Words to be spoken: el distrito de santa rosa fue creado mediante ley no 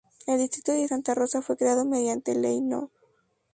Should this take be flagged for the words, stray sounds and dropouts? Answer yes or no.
no